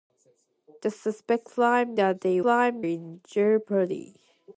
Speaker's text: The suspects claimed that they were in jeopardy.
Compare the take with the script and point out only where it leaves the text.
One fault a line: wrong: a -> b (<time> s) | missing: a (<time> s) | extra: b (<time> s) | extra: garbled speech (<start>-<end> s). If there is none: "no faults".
wrong: were -> claimed (2.4 s)